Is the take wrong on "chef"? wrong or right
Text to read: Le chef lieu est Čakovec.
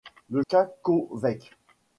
wrong